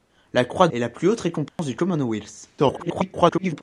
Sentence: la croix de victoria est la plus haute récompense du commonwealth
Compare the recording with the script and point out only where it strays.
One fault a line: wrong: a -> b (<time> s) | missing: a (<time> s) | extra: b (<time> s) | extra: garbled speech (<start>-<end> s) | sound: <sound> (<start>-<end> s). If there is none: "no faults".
missing: de victoria (0.7 s)
sound: dropout (1.5-1.6 s)
extra: garbled speech (2.6-3.6 s)